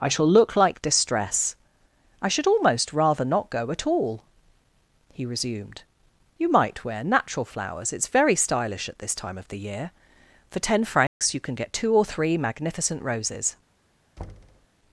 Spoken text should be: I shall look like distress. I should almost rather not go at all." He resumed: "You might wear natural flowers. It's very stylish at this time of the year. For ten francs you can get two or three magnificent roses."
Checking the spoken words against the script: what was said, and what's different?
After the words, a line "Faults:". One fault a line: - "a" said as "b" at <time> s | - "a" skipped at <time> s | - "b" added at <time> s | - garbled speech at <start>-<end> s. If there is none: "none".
I shall look like distress. I should almost rather not go at all." He resumed: "You might wear natural flowers. It's very stylish at this time of the year. For ten francs you can get two or three magnificent roses."
Faults:
none